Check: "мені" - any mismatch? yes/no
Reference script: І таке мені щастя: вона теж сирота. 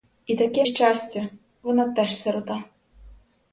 yes